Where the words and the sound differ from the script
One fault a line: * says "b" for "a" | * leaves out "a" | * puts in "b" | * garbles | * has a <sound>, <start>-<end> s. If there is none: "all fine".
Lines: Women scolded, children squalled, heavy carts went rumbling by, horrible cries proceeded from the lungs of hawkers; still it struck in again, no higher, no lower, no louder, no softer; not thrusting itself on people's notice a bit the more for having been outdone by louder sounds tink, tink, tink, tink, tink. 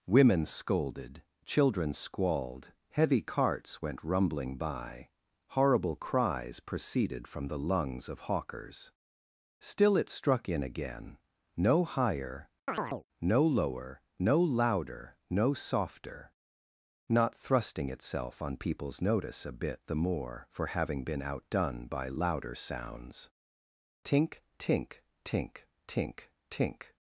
* has a chirp, 12.7-13.0 s